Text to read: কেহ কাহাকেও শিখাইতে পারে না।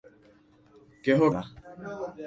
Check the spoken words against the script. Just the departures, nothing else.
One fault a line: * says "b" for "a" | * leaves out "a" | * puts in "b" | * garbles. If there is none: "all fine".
* leaves out "কাহাকেও শিখাইতে পারে"